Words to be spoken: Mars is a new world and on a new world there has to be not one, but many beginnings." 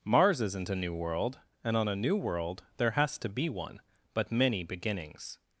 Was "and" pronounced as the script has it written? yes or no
yes